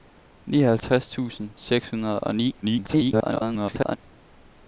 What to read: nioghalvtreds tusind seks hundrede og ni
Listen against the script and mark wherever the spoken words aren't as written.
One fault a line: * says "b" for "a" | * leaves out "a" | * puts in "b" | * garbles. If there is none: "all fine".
* garbles